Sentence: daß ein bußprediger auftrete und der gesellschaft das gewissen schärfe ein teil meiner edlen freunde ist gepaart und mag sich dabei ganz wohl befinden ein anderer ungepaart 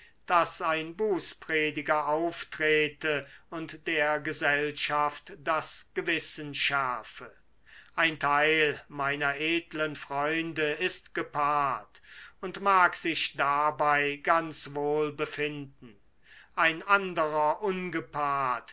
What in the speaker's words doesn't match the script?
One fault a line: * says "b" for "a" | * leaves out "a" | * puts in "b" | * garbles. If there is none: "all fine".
all fine